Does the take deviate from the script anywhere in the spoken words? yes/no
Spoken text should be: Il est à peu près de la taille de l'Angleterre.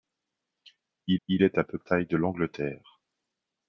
yes